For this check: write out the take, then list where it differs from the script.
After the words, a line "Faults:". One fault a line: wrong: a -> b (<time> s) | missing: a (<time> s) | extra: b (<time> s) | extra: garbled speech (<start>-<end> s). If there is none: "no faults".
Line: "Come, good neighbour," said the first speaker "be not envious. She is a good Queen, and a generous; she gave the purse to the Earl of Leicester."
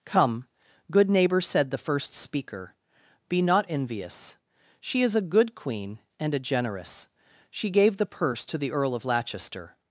"Come, good neighbour," said the first speaker "be not envious. She is a good Queen, and a generous; she gave the purse to the Earl of Leicester."
Faults:
no faults